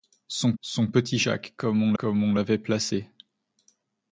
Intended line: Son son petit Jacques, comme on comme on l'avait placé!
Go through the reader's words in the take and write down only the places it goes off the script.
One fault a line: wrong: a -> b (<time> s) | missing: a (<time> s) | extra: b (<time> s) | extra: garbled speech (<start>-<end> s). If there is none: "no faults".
no faults